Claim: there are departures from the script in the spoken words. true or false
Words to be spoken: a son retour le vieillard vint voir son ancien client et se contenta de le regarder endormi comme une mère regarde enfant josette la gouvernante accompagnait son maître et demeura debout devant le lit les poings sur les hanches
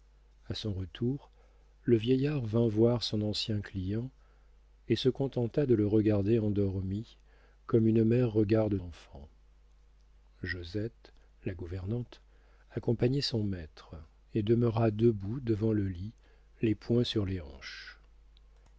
false